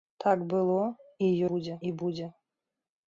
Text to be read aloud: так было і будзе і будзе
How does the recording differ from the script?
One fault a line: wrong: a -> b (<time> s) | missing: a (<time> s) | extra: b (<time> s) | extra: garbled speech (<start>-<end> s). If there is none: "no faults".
no faults